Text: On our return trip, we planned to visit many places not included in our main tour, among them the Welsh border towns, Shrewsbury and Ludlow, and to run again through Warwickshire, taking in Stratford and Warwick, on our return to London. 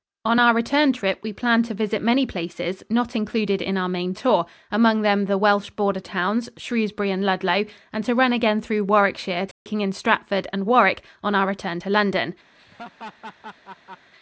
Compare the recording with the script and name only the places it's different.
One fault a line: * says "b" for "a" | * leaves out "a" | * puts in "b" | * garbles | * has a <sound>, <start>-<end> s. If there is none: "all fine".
* has a dropout, 9.5-9.7 s
* has a laugh, 12.6-14.1 s